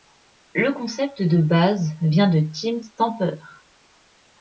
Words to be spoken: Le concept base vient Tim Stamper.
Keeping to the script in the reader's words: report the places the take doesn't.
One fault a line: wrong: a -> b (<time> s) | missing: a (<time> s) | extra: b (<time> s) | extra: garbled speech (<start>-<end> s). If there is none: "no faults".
extra: de (1.2 s)
extra: de (2.3 s)